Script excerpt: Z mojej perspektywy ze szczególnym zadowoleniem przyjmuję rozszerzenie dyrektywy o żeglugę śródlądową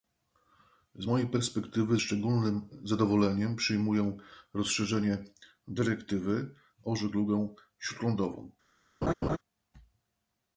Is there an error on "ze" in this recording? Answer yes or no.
yes